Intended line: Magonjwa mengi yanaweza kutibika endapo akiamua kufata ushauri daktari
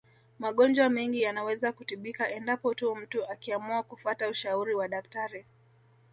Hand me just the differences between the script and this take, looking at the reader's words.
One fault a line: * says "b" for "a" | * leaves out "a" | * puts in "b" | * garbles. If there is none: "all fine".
* puts in "tu mtu"
* puts in "wa"